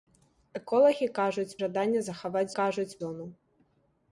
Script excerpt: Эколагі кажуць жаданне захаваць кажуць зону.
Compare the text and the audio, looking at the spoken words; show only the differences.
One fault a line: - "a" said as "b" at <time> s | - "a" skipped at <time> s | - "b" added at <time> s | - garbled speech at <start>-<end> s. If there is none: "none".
none